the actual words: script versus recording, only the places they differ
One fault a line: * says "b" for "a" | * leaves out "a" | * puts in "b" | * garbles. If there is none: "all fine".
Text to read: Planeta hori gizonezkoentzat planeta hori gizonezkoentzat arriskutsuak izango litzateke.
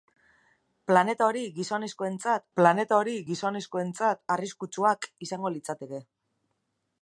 all fine